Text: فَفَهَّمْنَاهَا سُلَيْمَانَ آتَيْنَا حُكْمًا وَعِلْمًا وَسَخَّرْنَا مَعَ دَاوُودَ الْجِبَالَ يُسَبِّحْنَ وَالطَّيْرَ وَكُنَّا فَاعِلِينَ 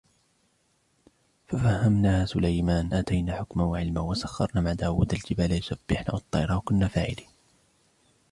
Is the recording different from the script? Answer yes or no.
no